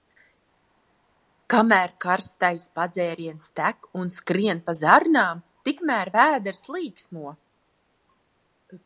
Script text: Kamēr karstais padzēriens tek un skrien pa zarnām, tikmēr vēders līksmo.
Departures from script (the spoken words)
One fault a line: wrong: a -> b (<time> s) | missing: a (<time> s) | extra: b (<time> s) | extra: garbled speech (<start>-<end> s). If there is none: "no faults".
no faults